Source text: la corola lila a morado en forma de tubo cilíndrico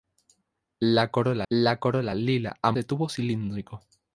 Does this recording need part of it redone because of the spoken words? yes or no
yes